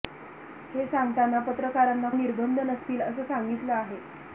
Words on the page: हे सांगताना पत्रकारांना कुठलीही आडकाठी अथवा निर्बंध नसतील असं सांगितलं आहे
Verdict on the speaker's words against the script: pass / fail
fail